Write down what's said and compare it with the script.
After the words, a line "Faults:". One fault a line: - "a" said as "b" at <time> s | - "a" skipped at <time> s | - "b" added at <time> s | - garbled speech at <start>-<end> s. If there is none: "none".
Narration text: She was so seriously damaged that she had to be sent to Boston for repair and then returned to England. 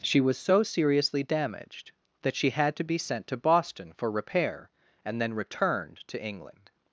She was so seriously damaged that she had to be sent to Boston for repair and then returned to England.
Faults:
none